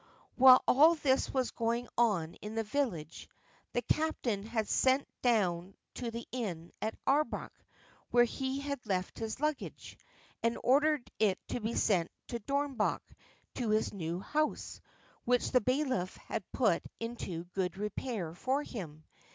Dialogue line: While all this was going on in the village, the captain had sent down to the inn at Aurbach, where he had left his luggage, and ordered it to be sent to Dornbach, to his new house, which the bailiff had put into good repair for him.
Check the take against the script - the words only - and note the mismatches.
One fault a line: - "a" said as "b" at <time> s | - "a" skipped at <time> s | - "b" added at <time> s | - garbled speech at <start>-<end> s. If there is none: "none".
none